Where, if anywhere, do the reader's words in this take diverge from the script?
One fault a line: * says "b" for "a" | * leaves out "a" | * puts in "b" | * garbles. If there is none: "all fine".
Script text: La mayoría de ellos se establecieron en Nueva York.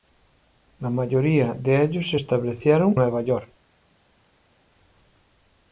* leaves out "en"